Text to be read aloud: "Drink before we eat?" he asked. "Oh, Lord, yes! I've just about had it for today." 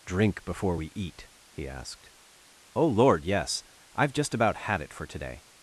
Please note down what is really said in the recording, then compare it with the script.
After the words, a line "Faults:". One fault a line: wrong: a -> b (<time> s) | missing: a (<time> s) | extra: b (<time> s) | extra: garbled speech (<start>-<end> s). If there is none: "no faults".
"Drink before we eat?" he asked. "Oh, Lord, yes! I've just about had it for today."
Faults:
no faults